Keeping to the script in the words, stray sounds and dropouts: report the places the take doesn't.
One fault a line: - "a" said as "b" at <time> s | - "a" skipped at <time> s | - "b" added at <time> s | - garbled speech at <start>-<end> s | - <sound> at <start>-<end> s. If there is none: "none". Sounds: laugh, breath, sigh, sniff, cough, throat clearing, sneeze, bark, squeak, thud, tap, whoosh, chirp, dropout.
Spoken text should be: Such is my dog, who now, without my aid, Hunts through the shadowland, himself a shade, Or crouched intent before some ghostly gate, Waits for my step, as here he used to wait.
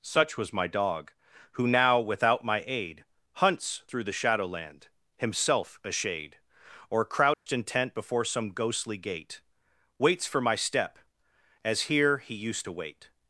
- "is" said as "was" at 0.4 s
- dropout at 7.3-7.5 s